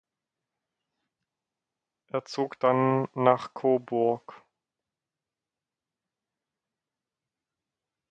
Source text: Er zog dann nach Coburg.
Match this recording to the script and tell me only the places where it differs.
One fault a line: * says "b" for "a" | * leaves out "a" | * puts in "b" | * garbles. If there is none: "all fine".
all fine